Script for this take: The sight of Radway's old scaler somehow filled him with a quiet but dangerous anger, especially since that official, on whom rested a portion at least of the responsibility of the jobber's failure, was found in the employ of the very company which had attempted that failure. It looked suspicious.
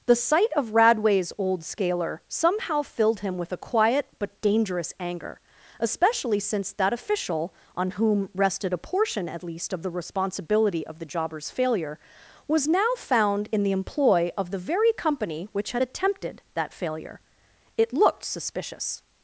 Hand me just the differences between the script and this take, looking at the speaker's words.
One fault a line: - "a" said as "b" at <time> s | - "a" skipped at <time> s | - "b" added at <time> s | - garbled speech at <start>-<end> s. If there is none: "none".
- "now" added at 12.7 s